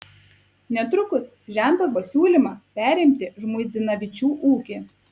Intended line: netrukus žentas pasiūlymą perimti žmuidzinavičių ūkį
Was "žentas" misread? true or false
false